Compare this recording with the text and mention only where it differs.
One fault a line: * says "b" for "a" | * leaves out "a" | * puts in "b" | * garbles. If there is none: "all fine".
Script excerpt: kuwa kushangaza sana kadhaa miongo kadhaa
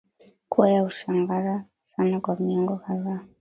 * puts in "ya"
* says "kwa" for "kadhaa"